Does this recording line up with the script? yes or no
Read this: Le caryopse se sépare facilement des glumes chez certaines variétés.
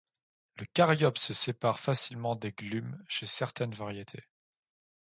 yes